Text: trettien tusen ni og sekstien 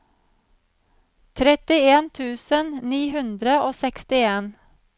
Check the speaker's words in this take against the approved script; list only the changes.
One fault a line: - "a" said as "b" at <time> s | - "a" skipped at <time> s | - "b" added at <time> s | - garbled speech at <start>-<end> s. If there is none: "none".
- "hundre" added at 3.2 s